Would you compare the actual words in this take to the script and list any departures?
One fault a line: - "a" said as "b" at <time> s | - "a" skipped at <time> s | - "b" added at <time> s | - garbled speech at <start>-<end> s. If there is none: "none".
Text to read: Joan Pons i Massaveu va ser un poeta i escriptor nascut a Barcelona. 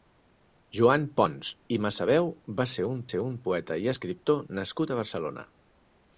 - "ser un" added at 3.1 s